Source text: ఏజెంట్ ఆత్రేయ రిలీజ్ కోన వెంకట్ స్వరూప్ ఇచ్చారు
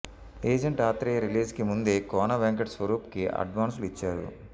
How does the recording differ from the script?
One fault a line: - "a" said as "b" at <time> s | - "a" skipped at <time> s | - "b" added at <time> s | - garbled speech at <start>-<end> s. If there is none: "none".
- "కి ముందే" added at 1.5 s
- "కి అడ్వాన్సులు" added at 3.1 s